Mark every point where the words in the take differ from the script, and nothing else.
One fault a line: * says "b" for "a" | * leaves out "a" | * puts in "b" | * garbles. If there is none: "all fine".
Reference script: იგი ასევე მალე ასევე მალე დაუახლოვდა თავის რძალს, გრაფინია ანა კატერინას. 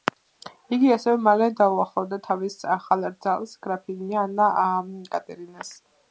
* leaves out "ასევე მალე"
* puts in "ახალ"